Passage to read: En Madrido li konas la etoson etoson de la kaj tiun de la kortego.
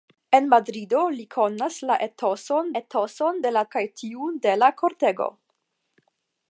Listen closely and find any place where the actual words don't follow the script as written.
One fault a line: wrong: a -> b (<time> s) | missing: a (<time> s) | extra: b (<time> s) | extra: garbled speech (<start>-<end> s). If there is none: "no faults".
no faults